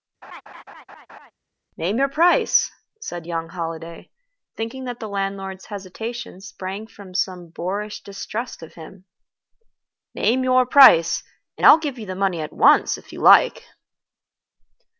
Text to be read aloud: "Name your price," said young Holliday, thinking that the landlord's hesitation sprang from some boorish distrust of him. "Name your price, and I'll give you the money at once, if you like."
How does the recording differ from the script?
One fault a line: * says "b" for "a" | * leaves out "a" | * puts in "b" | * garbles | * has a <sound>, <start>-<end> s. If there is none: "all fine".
* has a laugh, 0.2-1.3 s